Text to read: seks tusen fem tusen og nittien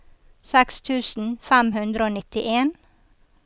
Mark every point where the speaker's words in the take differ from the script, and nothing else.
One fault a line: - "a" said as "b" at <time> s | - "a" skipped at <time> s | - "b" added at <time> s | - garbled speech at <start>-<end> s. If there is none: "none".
- "tusen" said as "hundre" at 1.8 s